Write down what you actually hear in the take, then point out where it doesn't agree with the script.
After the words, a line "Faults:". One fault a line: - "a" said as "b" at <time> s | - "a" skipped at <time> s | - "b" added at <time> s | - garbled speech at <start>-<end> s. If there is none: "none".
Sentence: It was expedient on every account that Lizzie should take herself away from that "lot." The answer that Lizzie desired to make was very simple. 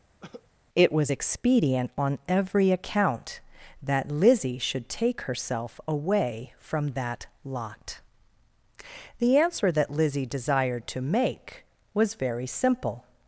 It was expedient on every account that Lizzie should take herself away from that "lot." The answer that Lizzie desired to make was very simple.
Faults:
none